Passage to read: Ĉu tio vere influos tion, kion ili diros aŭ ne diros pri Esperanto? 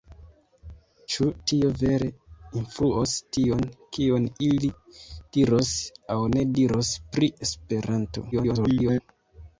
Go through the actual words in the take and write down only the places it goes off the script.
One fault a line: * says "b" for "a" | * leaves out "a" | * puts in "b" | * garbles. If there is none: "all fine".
* garbles